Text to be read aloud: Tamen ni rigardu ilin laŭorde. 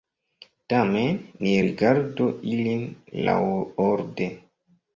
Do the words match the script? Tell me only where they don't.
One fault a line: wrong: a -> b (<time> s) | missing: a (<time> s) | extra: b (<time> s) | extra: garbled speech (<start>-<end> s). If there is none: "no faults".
no faults